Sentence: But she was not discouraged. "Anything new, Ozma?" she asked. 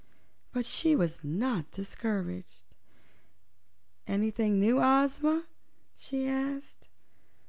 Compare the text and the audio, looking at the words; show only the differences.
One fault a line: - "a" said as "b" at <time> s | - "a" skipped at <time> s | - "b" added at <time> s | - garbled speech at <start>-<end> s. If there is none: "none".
none